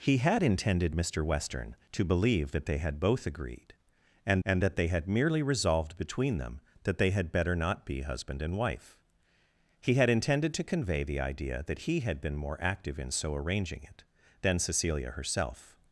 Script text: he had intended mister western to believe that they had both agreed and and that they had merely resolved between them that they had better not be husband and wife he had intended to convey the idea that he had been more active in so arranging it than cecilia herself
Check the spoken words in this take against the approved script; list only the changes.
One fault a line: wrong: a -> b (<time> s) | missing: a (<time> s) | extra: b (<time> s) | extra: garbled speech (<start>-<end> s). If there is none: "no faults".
no faults